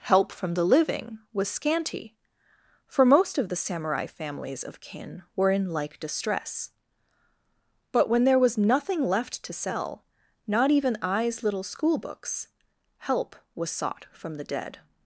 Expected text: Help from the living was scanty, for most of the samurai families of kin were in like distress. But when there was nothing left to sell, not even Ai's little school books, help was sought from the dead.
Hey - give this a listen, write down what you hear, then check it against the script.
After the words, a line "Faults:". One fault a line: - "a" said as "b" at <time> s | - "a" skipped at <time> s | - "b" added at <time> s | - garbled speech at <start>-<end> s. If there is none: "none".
Help from the living was scanty, for most of the samurai families of kin were in like distress. But when there was nothing left to sell, not even Ai's little school books, help was sought from the dead.
Faults:
none